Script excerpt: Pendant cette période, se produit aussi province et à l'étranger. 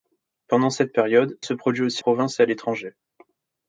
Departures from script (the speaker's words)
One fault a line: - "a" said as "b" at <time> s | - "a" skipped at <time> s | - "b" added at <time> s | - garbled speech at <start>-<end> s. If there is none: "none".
none